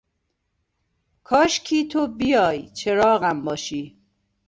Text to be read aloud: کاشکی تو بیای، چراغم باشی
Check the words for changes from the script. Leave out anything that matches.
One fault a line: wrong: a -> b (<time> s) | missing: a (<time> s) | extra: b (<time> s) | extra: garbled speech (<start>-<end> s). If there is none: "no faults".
no faults